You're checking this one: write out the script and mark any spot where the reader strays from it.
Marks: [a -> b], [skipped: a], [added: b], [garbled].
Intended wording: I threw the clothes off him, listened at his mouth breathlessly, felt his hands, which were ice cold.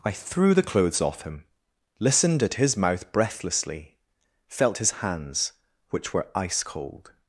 I threw the clothes off him, listened at his mouth breathlessly, felt his hands, which were ice cold.